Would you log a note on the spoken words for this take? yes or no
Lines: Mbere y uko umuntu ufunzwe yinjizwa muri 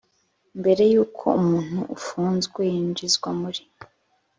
no